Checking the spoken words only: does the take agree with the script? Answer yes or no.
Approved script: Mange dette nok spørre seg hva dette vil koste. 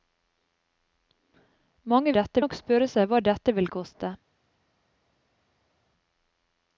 yes